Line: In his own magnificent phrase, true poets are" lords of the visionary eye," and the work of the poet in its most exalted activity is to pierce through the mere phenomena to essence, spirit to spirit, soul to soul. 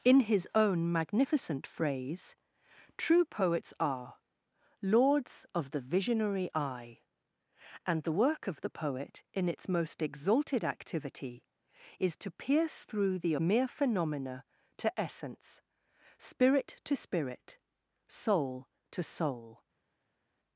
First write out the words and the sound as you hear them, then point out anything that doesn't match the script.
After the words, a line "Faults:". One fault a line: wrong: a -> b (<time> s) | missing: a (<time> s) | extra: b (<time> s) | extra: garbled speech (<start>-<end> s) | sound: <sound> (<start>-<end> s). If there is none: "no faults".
In his own magnificent phrase, true poets are" lords of the visionary eye," and the work of the poet in its most exalted activity is to pierce through the mere phenomena to essence, spirit to spirit, soul to soul.
Faults:
no faults